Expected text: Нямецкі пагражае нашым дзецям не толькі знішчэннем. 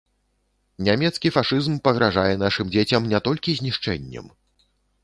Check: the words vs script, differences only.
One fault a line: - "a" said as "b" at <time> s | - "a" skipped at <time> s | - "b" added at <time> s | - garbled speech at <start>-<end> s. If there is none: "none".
- "фашызм" added at 1.3 s